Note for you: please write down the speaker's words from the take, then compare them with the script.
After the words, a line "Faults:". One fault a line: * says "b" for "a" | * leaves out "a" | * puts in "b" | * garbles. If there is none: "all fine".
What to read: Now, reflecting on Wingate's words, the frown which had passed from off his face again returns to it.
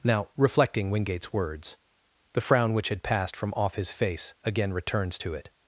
Now, reflecting Wingate's words, the frown which had passed from off his face again returns to it.
Faults:
* leaves out "on"